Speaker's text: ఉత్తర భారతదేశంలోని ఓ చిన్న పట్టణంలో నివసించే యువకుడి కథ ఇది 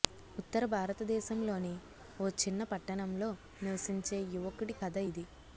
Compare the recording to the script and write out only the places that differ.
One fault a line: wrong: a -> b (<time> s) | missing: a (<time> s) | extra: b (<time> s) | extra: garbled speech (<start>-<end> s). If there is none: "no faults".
no faults